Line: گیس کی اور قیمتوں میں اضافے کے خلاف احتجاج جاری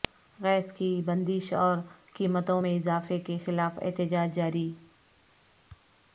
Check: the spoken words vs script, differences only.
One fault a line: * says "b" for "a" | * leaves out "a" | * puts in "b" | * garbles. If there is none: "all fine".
* puts in "بندش"